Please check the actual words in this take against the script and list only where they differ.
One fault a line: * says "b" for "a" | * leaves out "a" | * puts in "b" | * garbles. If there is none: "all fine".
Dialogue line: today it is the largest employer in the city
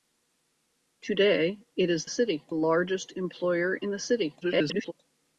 * says "city" for "the"
* garbles